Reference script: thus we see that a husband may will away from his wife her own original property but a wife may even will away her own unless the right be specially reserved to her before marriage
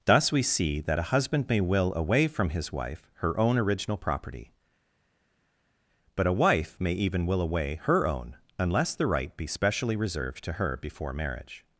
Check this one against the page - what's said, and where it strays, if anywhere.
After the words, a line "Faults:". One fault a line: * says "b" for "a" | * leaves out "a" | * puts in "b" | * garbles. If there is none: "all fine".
thus we see that a husband may will away from his wife her own original property but a wife may even will away her own unless the right be specially reserved to her before marriage
Faults:
all fine